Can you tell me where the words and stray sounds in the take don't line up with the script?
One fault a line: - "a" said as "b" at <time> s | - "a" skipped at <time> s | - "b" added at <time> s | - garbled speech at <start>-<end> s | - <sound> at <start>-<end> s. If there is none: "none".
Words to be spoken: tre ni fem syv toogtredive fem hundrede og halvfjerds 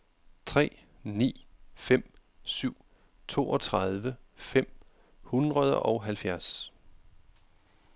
none